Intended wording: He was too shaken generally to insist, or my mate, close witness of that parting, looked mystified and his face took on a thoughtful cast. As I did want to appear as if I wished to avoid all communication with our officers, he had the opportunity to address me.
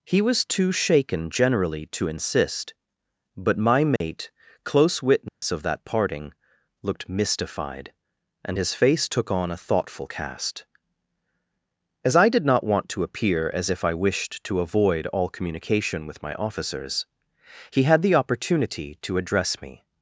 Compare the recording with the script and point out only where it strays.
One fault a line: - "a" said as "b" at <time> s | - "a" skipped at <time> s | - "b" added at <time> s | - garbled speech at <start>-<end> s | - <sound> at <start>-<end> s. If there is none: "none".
- "or" said as "but" at 3.4 s
- dropout at 4.0-4.0 s
- dropout at 5.3-5.4 s
- "not" added at 12.5 s
- "our" said as "my" at 16.2 s